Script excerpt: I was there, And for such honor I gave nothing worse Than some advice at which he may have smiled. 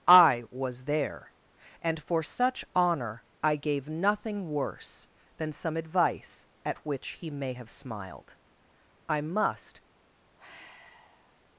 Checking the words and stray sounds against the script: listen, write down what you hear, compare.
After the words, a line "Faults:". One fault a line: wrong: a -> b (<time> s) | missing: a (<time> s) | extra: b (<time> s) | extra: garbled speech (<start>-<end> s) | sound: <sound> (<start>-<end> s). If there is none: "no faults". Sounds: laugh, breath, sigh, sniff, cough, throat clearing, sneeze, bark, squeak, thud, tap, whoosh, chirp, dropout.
I was there, And for such honor I gave nothing worse Than some advice at which he may have smiled. I must
Faults:
extra: I must (9.1 s)
sound: sigh (10.4-11.4 s)